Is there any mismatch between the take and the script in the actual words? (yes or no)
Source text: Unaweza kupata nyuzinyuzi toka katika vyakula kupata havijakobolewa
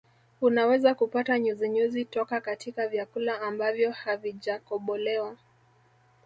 yes